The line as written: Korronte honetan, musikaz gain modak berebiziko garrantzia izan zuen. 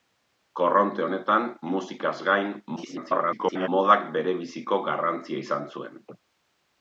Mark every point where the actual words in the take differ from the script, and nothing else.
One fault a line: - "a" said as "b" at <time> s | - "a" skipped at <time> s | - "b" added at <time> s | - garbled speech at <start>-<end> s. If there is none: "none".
- garbled speech at 2.8-3.7 s